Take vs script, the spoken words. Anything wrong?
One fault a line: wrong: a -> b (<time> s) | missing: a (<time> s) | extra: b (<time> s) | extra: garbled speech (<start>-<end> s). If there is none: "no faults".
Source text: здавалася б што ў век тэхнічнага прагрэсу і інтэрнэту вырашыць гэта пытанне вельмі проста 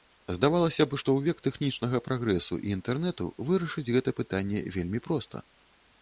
no faults